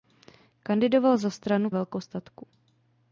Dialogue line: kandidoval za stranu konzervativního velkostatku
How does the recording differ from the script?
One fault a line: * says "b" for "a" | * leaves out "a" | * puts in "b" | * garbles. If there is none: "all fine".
* leaves out "konzervativního"